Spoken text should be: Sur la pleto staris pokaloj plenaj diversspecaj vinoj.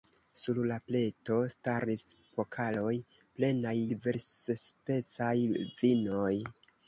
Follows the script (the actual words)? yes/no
yes